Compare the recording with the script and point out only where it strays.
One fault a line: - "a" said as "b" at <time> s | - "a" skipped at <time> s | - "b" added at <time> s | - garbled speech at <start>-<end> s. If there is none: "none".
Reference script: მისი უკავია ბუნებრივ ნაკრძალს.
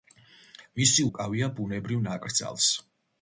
none